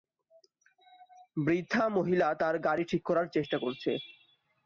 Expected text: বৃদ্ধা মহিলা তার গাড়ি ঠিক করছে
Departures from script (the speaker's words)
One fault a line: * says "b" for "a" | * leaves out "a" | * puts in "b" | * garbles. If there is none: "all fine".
* puts in "করার চেষ্টা"